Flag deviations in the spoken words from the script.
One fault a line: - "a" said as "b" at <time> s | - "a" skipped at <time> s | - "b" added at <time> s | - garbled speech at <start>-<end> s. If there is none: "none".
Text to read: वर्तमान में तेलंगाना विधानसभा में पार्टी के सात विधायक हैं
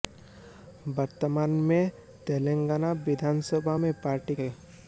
- "के सात विधायक" skipped at 4.4 s